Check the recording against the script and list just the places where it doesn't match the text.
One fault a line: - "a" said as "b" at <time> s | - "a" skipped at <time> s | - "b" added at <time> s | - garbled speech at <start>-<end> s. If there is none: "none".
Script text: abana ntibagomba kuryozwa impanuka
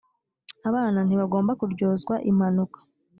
none